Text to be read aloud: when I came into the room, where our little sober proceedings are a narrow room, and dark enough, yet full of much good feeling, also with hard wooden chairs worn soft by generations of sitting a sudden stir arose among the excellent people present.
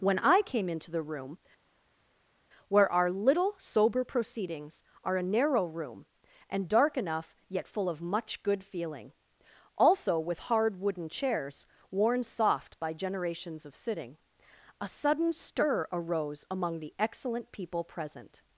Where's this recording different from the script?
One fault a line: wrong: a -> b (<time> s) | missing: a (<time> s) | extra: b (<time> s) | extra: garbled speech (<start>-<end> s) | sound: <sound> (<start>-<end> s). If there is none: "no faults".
no faults